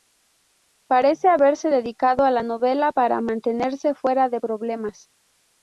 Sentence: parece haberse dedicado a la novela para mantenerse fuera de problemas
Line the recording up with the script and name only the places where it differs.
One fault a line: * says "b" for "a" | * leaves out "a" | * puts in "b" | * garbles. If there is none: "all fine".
all fine